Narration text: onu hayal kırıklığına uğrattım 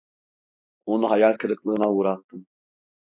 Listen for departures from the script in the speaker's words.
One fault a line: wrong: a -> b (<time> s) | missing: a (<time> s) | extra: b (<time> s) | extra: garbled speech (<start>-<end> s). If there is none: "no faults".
no faults